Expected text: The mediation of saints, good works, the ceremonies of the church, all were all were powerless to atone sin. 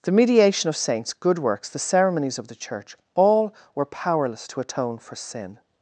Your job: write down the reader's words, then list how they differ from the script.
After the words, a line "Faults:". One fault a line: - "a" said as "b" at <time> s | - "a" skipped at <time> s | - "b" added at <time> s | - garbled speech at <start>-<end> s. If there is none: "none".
The mediation of saints, good works, the ceremonies of the church, all were powerless to atone for sin.
Faults:
- "all were" skipped at 3.8 s
- "for" added at 5.0 s